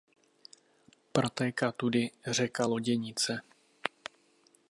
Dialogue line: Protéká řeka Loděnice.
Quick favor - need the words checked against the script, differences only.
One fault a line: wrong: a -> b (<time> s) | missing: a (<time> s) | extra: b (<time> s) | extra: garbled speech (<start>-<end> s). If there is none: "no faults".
extra: tudy (1.7 s)